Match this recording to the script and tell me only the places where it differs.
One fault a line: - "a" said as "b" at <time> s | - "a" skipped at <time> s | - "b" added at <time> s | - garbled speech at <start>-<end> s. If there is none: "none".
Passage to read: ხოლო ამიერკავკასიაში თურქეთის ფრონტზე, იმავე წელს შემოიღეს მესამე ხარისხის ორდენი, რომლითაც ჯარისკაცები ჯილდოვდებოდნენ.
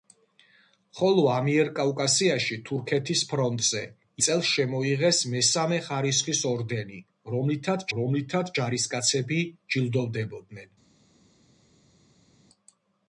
- "იმავე" skipped at 3.8 s
- "რომლითაც" added at 8.0 s